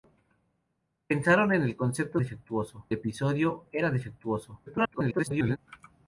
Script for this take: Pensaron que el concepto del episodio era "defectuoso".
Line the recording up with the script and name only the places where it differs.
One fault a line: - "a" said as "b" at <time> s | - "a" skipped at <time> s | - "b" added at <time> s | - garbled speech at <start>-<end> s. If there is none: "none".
- "del" said as "defectuoso" at 2.2 s
- garbled speech at 4.7-5.6 s